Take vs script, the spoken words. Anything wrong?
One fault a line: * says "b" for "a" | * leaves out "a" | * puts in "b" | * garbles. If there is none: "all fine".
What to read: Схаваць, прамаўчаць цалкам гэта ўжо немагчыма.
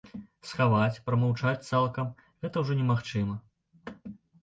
all fine